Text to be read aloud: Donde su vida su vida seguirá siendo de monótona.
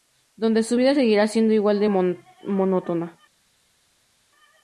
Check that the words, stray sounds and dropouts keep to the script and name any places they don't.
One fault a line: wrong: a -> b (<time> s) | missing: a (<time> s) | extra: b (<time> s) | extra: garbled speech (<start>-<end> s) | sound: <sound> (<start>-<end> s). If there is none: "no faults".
missing: su vida (0.9 s)
extra: igual (1.5 s)